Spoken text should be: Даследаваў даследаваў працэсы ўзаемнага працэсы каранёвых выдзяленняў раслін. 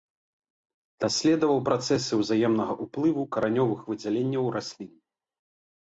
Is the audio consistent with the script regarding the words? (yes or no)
no